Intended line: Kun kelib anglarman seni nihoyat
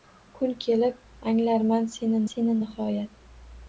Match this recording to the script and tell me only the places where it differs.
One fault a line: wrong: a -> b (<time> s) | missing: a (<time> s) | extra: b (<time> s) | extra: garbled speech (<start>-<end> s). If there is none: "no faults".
extra: seni (2.3 s)